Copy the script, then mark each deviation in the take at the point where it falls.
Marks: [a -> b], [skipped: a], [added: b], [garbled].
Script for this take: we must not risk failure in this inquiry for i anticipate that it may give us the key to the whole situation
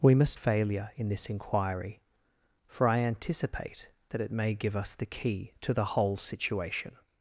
we must [skipped: not risk] failure in this inquiry for i anticipate that it may give us the key to the whole situation